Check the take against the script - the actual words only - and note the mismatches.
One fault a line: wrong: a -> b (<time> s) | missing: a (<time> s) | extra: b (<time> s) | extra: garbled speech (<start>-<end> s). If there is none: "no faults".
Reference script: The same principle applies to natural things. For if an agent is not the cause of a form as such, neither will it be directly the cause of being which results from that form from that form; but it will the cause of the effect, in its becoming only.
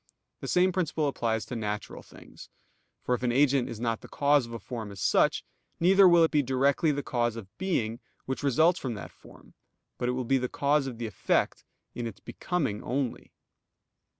missing: from that form (9.5 s)
extra: be (10.2 s)